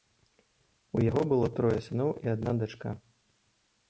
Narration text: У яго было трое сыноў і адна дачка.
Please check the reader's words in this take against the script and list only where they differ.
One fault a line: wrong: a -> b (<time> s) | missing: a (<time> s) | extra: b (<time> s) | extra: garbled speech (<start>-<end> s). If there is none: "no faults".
no faults